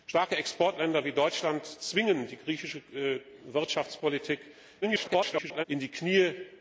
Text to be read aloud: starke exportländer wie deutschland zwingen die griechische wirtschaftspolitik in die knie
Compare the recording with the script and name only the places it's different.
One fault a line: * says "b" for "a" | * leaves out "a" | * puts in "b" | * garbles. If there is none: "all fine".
* garbles